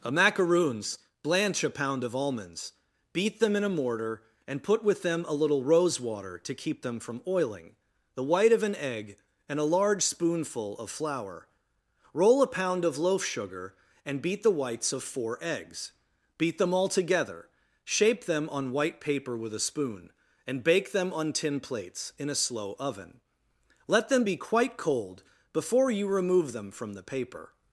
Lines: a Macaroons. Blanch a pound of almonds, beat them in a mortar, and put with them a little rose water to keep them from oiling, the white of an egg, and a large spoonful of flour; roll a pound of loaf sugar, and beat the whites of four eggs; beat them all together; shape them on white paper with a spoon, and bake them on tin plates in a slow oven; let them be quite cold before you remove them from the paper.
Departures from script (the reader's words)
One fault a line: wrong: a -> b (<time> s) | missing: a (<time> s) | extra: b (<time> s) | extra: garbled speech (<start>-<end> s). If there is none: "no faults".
no faults